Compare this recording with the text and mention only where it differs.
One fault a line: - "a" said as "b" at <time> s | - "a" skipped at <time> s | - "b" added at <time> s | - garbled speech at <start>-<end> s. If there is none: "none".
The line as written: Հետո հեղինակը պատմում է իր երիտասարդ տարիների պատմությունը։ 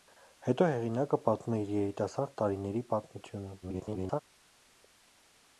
- garbled speech at 3.6-4.2 s